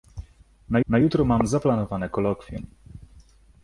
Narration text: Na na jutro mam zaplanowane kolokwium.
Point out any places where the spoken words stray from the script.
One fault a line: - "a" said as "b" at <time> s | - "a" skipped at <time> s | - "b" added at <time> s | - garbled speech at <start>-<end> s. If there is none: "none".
none